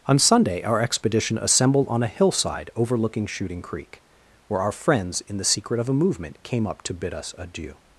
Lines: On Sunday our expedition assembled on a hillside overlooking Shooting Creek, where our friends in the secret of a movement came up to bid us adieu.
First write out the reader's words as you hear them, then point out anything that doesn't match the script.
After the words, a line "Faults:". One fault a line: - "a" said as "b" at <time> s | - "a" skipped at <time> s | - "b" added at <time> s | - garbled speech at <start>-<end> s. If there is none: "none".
On Sunday our expedition assembled on a hillside overlooking Shooting Creek, where our friends in the secret of a movement came up to bid us adieu.
Faults:
none